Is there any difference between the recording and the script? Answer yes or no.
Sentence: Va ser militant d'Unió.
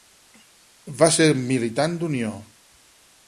no